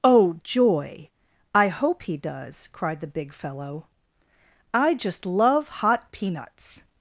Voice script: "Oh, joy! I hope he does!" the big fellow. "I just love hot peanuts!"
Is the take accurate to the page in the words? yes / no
no